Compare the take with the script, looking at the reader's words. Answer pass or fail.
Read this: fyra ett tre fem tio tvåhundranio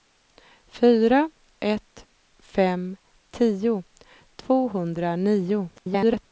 fail